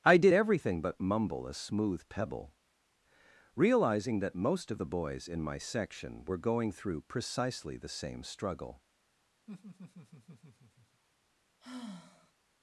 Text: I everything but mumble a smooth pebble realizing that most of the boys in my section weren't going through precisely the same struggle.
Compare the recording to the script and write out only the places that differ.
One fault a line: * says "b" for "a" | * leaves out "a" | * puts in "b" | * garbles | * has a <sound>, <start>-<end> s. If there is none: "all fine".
* puts in "did"
* says "were" for "weren't"
* has a laugh, 9.5-11.0 s
* has a sigh, 11.6-12.3 s